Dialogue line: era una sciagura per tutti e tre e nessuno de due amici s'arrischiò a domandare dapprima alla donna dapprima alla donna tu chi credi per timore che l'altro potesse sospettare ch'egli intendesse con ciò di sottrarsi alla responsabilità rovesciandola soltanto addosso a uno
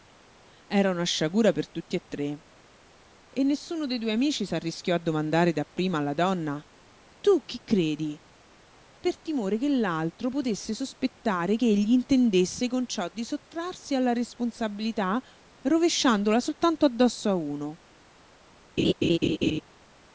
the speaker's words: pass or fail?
fail